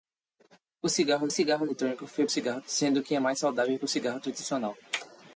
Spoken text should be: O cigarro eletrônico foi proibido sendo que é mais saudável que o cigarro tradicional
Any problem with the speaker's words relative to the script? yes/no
yes